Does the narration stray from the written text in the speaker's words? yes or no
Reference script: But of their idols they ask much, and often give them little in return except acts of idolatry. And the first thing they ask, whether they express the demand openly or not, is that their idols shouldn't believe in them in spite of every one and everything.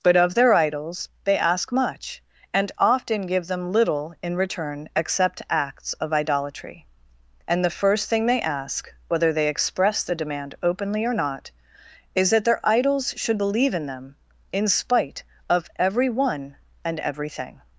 yes